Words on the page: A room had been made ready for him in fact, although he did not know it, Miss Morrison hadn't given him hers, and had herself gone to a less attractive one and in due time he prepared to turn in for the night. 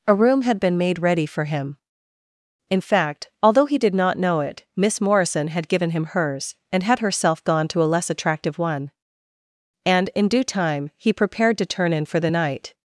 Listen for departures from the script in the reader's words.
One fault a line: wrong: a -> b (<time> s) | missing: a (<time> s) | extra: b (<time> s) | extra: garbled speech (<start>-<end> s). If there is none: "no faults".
wrong: hadn't -> had (5.5 s)